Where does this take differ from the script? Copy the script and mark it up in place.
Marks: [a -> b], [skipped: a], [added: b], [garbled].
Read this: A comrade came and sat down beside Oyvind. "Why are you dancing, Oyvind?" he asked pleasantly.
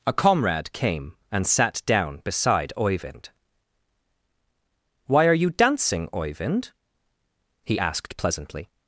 A comrade came and sat down beside Oyvind. "Why are you dancing, Oyvind?" he asked pleasantly.